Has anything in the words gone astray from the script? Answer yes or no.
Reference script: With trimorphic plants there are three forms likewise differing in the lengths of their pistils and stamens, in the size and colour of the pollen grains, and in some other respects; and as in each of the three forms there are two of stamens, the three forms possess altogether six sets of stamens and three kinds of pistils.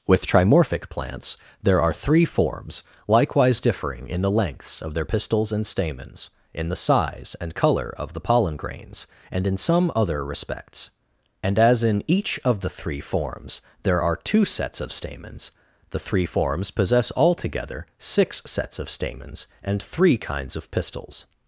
yes